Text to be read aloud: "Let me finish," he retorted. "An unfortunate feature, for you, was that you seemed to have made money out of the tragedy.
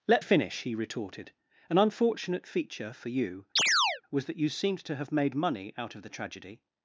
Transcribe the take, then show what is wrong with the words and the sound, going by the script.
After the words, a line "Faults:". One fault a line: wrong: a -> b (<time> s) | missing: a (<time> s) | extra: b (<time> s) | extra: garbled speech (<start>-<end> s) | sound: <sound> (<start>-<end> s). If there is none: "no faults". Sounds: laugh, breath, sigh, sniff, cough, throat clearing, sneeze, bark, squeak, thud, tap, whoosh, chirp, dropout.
"Let finish," he retorted. "An unfortunate feature, for you, was that you seemed to have made money out of the tragedy.
Faults:
missing: me (0.2 s)
sound: chirp (3.6-4.0 s)